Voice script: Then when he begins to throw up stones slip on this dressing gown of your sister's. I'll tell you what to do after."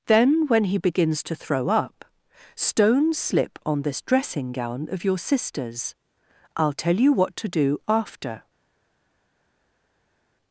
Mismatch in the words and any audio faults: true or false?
false